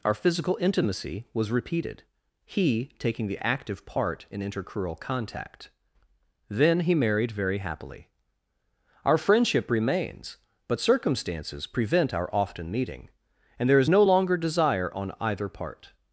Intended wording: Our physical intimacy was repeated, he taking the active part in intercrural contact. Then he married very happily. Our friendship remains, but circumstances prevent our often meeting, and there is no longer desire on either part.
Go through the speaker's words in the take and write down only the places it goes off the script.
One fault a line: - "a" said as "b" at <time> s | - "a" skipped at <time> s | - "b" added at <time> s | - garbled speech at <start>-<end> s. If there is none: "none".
none